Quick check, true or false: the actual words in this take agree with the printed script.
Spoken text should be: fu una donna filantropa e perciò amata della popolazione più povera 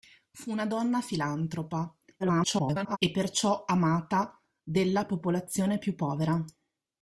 false